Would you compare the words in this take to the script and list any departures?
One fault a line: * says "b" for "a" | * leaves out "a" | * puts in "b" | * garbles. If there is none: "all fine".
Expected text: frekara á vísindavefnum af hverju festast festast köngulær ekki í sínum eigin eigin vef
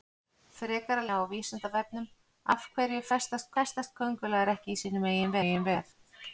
all fine